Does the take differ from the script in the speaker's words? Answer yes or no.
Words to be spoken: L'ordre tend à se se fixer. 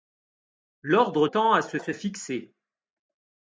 no